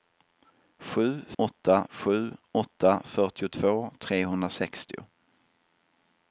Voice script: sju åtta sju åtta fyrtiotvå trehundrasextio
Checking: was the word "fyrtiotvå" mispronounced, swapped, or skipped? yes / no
no